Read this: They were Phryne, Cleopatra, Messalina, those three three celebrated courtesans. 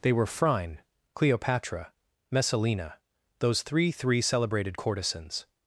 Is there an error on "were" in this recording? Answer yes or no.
no